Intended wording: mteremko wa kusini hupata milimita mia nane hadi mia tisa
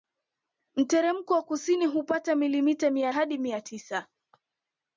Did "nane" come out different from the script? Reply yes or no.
yes